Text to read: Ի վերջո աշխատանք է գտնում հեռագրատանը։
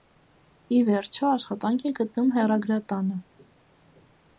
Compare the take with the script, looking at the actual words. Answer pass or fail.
pass